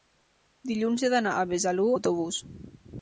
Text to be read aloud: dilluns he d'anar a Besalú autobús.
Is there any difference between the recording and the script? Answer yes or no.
no